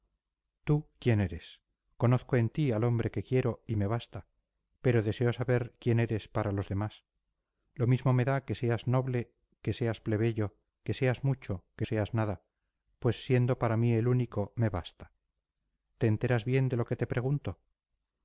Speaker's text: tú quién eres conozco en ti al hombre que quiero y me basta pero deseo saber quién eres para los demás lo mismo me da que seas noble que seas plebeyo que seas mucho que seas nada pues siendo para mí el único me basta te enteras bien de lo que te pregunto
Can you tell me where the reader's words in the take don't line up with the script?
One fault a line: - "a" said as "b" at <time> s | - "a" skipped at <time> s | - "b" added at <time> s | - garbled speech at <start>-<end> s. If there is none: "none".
none